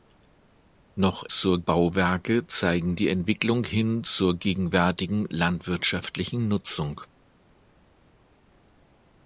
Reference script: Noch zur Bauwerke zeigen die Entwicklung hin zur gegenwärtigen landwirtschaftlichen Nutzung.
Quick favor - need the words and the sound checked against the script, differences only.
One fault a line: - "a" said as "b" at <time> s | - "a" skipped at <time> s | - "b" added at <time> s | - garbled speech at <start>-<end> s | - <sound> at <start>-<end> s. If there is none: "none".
none